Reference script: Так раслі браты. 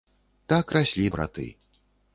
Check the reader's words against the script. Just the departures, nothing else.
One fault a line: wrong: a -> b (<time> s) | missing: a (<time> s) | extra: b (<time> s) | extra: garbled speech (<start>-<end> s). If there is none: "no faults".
no faults